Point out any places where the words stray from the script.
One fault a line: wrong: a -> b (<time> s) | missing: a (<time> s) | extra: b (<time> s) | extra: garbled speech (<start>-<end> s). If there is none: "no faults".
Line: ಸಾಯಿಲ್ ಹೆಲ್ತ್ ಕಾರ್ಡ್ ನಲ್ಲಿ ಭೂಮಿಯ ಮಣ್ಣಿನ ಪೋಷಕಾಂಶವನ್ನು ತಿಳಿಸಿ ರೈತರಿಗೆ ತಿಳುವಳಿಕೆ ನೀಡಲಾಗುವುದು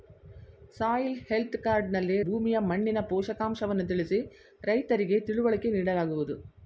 no faults